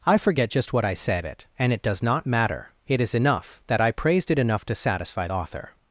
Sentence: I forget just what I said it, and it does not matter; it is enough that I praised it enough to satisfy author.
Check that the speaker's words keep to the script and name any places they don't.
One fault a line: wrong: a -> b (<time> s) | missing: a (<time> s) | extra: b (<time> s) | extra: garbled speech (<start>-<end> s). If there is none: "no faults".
no faults